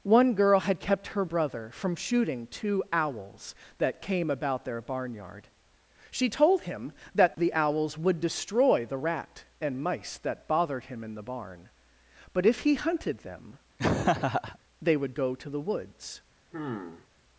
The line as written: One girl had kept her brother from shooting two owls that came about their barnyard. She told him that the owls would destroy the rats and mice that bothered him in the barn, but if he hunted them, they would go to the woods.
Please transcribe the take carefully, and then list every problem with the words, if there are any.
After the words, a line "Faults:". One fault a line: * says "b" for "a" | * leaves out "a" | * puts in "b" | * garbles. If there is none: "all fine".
One girl had kept her brother from shooting two owls that came about their barnyard. She told him that the owls would destroy the rat and mice that bothered him in the barn, but if he hunted them, they would go to the woods.
Faults:
* says "rat" for "rats"